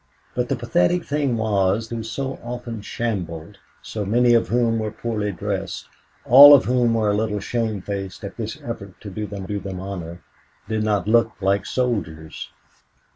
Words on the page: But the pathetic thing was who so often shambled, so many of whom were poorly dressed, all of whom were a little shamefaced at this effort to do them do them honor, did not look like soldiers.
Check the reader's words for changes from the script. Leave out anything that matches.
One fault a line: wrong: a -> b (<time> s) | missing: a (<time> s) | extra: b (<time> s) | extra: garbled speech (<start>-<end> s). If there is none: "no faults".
no faults